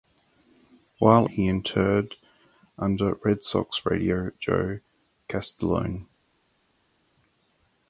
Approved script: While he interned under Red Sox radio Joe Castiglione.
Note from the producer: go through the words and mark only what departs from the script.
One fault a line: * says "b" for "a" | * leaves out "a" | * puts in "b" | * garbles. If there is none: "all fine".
all fine